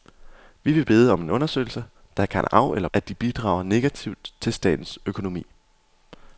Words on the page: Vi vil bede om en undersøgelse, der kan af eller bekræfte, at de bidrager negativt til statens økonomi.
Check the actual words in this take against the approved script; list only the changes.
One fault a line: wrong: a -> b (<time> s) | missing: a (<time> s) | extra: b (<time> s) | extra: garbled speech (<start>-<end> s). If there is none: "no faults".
missing: bekræfte (2.9 s)